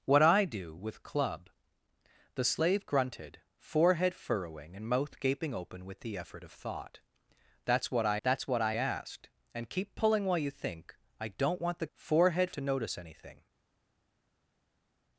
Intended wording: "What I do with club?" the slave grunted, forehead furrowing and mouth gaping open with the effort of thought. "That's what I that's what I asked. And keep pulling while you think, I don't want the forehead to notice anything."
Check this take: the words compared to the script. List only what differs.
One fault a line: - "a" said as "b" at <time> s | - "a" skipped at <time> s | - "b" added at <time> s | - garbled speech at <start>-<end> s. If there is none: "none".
none